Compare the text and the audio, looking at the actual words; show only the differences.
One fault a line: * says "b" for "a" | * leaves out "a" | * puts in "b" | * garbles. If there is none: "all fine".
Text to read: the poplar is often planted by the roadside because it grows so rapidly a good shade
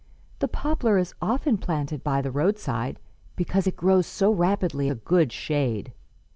all fine